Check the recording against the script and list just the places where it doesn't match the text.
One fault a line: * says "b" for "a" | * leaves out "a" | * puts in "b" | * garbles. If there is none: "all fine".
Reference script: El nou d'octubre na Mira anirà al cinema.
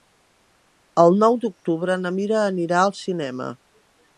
all fine